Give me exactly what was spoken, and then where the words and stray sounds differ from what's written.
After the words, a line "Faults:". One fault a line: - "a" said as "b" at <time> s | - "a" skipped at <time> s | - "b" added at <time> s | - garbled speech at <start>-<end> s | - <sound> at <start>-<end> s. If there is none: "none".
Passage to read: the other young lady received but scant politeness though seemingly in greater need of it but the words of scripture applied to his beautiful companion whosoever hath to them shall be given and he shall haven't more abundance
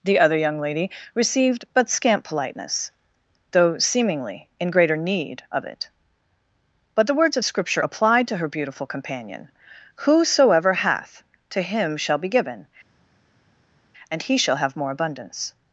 the other young lady received but scant politeness though seemingly in greater need of it but the words of scripture applied to her beautiful companion whosoever hath to him shall be given and he shall have more abundance
Faults:
- "his" said as "her" at 8.4 s
- "them" said as "him" at 11.6 s
- "haven't" said as "have" at 14.6 s